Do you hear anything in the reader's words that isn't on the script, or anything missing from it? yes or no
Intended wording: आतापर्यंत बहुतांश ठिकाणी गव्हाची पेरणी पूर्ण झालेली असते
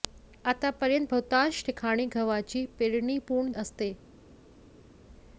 yes